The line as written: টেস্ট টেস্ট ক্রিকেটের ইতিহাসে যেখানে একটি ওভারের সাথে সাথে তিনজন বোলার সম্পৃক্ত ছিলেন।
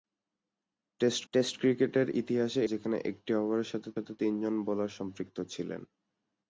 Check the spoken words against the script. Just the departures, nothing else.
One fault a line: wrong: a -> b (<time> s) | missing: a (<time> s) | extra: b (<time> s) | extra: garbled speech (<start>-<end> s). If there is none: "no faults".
no faults